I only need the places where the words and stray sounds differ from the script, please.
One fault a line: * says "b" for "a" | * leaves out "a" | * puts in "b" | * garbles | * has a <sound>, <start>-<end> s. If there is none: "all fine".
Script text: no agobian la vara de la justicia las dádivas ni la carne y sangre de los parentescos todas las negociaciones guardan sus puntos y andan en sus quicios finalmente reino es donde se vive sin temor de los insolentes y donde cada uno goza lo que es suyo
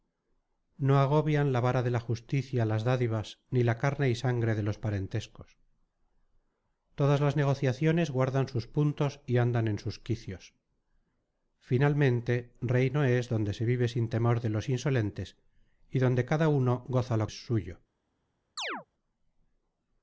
* leaves out "que"
* has a chirp, 18.6-18.9 s